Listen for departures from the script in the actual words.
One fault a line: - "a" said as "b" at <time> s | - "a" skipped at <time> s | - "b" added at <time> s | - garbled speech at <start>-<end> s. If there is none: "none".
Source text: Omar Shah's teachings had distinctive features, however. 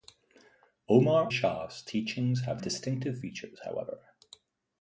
none